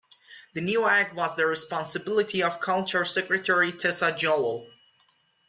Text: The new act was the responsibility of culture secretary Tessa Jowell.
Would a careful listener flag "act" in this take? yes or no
no